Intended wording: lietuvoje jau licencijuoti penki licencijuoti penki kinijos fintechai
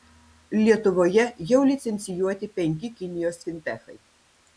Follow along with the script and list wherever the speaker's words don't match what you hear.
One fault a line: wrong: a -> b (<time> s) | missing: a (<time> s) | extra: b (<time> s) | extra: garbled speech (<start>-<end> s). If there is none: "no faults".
missing: licencijuoti penki (2.9 s)